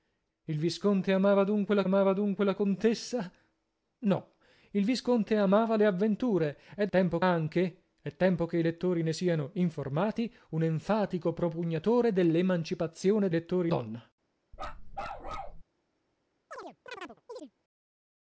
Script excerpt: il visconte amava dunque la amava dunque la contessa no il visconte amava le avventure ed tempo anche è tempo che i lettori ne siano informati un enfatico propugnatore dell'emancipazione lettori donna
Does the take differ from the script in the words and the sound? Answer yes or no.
yes